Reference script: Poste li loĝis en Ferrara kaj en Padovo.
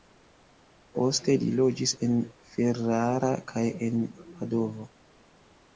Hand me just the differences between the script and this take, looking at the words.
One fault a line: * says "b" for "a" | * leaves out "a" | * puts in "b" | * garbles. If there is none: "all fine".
all fine